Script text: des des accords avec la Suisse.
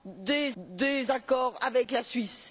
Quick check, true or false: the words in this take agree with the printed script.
true